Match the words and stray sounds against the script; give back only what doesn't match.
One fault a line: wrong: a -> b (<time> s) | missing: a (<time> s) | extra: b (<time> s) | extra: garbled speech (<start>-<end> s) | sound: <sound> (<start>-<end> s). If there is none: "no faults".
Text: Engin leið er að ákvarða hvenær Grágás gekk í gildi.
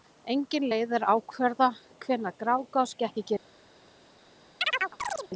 sound: chirp (4.6-5.3 s)